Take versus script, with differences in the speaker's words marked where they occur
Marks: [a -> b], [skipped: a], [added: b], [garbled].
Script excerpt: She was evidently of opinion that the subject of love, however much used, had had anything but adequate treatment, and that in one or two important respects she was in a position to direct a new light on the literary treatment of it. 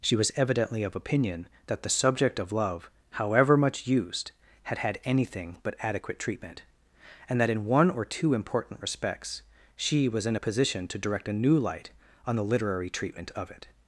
She was evidently of opinion that the subject of love, however much used, had had anything but adequate treatment, and that in one or two important respects she was in a position to direct a new light on the literary treatment of it.